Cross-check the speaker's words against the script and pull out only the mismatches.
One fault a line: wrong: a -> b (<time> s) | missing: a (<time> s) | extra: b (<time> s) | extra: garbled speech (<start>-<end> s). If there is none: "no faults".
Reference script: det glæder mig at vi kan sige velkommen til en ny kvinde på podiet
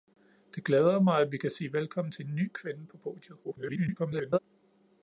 extra: garbled speech (3.4-4.4 s)